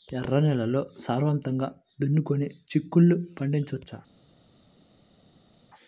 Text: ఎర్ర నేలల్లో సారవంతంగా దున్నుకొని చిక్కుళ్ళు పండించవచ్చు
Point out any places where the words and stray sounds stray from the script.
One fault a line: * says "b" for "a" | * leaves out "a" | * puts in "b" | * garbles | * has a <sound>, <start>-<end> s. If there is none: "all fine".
all fine